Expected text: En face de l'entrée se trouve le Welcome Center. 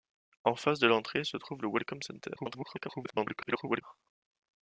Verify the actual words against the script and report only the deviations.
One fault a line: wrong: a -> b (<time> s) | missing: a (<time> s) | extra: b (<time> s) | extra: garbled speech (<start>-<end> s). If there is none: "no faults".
extra: garbled speech (2.4-3.8 s)